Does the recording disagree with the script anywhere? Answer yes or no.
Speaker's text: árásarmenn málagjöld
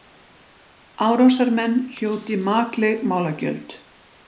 yes